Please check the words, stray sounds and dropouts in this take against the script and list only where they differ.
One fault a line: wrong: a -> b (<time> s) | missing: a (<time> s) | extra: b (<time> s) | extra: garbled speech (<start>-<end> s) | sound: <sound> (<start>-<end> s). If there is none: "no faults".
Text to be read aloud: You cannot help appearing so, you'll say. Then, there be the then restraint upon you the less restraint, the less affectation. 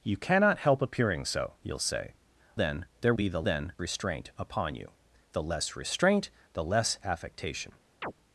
sound: chirp (8.0-8.1 s)